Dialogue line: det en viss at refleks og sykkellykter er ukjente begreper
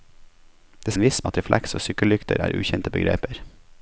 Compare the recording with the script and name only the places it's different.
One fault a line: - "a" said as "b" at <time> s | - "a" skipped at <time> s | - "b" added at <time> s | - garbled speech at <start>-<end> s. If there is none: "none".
none